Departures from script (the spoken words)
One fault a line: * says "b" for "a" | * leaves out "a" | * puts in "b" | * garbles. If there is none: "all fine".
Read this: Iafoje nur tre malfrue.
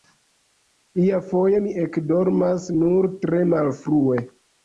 * puts in "mi ekdormas"